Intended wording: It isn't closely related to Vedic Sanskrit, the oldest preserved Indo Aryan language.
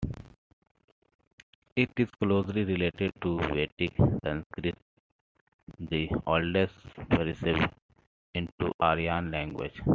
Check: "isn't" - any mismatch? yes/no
yes